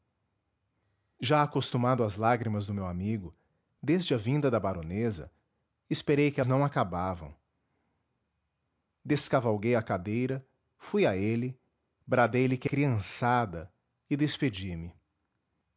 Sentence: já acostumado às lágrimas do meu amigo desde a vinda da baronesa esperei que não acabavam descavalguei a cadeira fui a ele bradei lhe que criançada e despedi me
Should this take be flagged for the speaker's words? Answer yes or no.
no